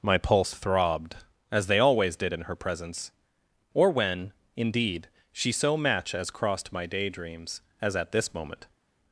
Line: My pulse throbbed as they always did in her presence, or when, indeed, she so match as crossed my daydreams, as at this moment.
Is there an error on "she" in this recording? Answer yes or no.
no